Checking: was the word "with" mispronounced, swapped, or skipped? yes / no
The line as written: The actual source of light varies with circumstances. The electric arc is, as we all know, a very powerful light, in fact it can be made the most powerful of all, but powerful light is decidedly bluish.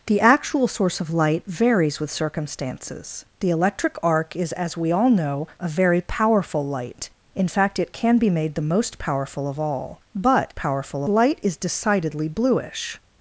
no